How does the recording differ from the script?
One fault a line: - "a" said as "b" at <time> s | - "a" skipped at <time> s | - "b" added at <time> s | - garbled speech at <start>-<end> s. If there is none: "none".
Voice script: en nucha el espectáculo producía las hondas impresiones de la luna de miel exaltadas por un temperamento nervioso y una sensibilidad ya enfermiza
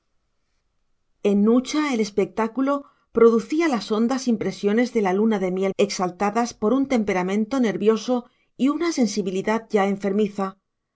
none